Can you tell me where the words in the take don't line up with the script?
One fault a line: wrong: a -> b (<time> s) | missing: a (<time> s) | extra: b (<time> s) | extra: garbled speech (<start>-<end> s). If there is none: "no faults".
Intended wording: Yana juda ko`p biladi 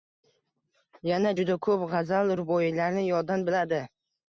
extra: g`azal ruboiylarni yoddan (2.0 s)